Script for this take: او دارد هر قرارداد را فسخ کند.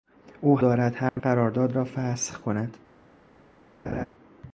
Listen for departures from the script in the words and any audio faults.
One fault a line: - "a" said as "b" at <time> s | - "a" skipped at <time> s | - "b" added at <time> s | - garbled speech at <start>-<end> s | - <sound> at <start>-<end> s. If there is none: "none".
- dropout at 1.1-1.2 s
- laugh at 3.8-4.1 s